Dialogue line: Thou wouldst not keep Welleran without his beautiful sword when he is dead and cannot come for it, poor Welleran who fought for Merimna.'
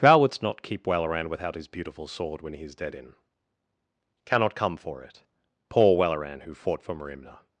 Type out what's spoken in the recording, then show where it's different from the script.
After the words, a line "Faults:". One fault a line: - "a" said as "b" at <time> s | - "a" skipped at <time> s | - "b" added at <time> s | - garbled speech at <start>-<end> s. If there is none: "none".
Thou wouldst not keep Welleran without his beautiful sword when he is dead in cannot come for it, poor Welleran who fought for Merimna.'
Faults:
- "and" said as "in" at 3.0 s